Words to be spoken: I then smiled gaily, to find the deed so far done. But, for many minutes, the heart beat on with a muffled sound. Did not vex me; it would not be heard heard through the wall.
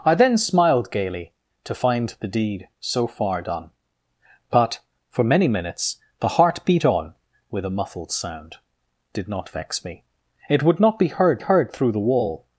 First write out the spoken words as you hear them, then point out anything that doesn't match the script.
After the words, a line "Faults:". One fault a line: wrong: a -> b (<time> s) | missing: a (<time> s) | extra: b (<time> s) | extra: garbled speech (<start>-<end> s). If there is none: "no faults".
I then smiled gaily, to find the deed so far done. But, for many minutes, the heart beat on with a muffled sound. Did not vex me; it would not be heard heard through the wall.
Faults:
no faults